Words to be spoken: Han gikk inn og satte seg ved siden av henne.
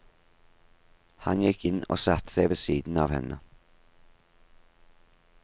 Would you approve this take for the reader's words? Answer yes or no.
yes